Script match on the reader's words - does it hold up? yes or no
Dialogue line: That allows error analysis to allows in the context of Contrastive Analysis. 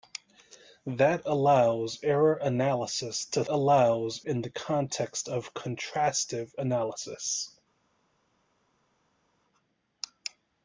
yes